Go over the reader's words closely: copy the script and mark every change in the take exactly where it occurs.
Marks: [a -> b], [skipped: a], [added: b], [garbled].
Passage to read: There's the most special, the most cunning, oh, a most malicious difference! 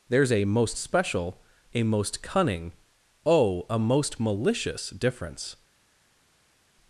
There's [the -> a] most special, [the -> a] most cunning, oh, a most malicious difference!